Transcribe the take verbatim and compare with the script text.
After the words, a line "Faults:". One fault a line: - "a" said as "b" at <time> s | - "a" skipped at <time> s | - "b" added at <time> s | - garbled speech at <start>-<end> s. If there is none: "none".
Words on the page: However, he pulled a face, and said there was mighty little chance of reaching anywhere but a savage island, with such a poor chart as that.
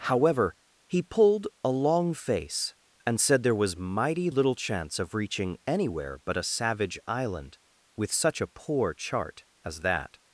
However, he pulled a long face, and said there was mighty little chance of reaching anywhere but a savage island, with such a poor chart as that.
Faults:
- "long" added at 1.7 s